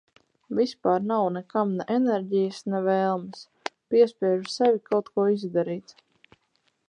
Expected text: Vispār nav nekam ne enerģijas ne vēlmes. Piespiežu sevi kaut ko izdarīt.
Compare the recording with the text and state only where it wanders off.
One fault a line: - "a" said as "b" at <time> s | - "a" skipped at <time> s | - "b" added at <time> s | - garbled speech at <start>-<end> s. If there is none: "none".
none